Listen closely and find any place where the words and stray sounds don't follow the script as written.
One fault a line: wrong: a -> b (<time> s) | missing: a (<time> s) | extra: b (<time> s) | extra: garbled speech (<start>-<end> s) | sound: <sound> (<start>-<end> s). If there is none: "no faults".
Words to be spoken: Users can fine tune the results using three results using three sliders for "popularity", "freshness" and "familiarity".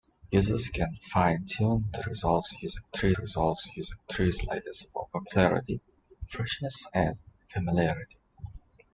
no faults